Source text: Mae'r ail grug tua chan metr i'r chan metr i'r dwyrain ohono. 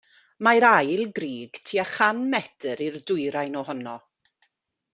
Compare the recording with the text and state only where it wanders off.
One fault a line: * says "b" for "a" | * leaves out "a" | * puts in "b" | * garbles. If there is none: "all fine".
* leaves out "chan metr i'r"